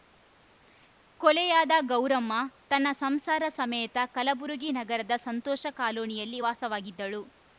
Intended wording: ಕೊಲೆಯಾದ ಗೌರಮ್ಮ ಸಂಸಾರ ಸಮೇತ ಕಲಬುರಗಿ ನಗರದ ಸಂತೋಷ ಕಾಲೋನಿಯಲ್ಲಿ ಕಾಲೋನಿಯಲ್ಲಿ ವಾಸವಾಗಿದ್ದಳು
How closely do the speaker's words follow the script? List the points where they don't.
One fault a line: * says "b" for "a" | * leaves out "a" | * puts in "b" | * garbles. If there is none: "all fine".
* puts in "ತನ್ನ"
* leaves out "ಕಾಲೋನಿಯಲ್ಲಿ"